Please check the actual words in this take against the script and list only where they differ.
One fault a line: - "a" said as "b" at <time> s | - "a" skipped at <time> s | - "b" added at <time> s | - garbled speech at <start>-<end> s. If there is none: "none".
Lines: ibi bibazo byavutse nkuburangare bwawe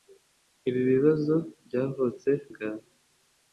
- "nkuburangare" skipped at 2.3 s